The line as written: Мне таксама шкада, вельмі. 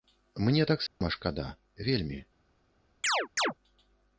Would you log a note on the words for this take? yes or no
no